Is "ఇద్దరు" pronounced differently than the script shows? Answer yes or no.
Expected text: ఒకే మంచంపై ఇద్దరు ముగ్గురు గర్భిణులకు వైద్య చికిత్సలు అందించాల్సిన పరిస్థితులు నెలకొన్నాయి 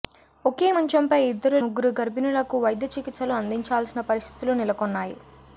no